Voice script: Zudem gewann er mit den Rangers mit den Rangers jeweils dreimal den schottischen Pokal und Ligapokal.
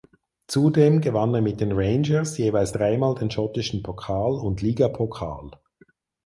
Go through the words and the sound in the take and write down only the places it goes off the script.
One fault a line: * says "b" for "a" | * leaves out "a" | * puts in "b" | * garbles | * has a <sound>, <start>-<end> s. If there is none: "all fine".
* leaves out "mit den Rangers"